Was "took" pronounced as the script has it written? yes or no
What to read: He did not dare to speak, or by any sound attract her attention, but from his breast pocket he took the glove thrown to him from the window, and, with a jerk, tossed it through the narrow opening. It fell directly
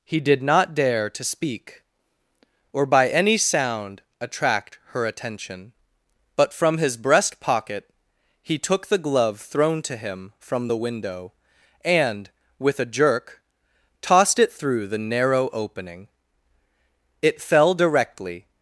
yes